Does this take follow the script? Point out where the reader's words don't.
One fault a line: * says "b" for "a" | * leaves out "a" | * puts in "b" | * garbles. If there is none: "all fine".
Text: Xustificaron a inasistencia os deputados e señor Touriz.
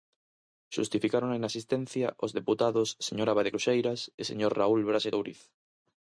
* puts in "señor Abade Cruxeiras"
* puts in "Raúl Braxe"